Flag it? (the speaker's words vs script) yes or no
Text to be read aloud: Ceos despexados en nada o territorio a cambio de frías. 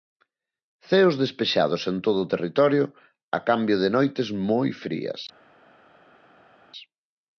yes